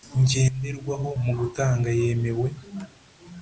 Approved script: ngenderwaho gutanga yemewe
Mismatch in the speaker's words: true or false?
true